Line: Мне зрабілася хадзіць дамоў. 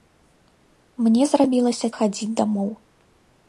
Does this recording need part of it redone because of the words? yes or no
no